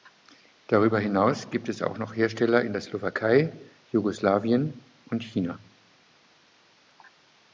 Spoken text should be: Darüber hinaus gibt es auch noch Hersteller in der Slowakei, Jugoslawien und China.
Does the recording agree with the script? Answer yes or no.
yes